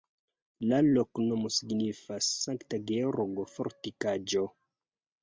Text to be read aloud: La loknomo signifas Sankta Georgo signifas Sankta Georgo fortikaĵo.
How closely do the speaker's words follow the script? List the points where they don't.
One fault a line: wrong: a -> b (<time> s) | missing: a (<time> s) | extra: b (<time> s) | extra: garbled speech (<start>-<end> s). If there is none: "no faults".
missing: signifas Sankta Georgo (3.5 s)